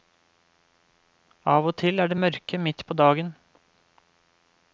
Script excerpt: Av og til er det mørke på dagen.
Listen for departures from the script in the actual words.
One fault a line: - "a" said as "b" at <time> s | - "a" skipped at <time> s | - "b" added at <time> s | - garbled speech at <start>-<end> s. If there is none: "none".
- "midt" added at 2.7 s